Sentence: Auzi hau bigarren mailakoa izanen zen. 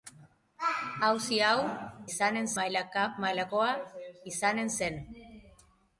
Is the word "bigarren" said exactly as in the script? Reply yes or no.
no